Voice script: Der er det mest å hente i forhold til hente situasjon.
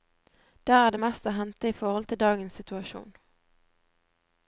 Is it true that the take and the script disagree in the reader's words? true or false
true